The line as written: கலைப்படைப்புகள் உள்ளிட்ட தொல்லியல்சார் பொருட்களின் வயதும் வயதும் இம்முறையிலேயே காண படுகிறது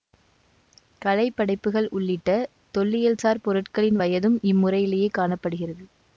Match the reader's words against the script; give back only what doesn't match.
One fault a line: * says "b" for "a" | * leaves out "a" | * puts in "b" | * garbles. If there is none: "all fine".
* leaves out "வயதும்"